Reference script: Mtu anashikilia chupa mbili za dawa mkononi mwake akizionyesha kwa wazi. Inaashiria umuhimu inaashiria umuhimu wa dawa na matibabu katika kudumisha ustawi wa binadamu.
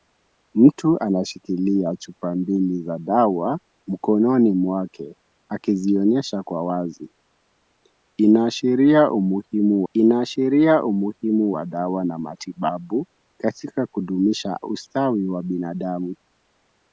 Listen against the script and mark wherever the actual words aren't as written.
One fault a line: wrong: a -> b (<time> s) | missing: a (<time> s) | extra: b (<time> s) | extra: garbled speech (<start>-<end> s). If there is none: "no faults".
no faults